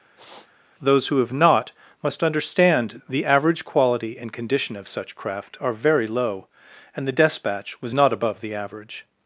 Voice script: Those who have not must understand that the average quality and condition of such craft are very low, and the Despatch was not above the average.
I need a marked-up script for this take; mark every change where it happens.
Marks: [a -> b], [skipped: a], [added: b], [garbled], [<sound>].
[sniff] Those who have not must understand [skipped: that] the average quality and condition of such craft are very low, and the Despatch was not above the average.